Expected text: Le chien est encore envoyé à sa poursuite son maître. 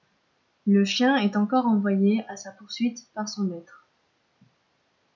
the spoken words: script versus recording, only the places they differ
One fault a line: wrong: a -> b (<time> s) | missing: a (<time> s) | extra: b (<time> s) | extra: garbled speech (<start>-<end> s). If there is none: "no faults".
extra: par (3.1 s)